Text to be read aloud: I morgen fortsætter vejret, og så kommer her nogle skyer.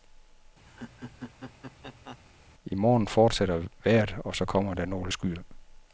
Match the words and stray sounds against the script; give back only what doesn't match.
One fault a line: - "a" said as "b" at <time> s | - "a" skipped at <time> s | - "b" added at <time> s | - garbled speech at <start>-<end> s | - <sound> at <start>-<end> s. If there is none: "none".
- laugh at 0.7-2.2 s
- "her" said as "der" at 4.7 s